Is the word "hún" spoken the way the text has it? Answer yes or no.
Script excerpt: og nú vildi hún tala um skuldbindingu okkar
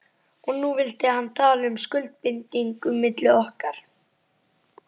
no